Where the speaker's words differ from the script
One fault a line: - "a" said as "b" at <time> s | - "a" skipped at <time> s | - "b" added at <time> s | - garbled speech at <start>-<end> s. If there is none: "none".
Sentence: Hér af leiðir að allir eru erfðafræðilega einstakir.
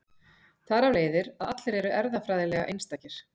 - "Hér" said as "Þar" at 0.7 s